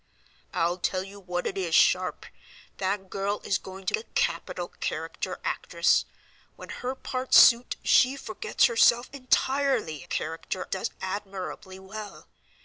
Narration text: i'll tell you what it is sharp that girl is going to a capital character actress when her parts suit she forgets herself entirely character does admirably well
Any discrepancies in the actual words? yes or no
no